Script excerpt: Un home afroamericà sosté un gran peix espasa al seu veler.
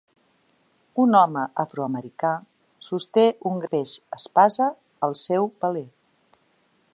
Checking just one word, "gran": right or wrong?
wrong